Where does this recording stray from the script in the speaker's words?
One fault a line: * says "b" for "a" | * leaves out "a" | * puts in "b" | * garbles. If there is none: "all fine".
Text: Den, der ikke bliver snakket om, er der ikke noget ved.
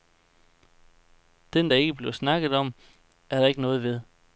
all fine